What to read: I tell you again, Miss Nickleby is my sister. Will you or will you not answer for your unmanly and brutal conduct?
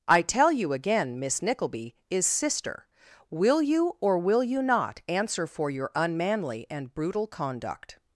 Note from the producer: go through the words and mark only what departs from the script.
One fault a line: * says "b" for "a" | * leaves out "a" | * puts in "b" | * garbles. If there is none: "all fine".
* leaves out "my"